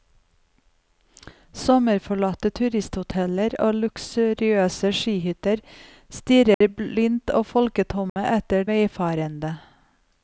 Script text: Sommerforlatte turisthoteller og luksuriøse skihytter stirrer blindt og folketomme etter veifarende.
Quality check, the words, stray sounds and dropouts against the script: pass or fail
fail